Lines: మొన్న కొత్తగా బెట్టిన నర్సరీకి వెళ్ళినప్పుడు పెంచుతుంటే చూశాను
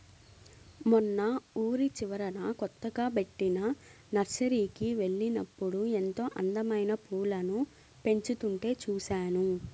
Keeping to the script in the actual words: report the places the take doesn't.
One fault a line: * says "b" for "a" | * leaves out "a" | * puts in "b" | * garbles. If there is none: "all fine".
* puts in "ఊరి చివరన"
* puts in "ఎంతో అందమైన పూలను"